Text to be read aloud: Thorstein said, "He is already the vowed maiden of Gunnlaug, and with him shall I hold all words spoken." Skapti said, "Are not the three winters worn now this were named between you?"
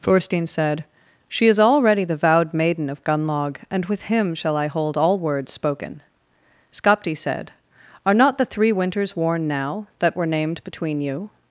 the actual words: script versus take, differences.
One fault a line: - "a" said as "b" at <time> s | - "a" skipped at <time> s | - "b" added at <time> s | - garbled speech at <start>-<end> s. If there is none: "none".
- "He" said as "She" at 1.3 s
- "this" said as "that" at 10.0 s